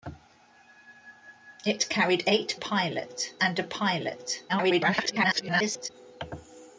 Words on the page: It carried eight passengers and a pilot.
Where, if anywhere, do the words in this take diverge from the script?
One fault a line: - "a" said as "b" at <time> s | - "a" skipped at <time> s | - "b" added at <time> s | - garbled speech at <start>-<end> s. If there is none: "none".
- "passengers" said as "pilot" at 2.5 s
- garbled speech at 4.5-5.9 s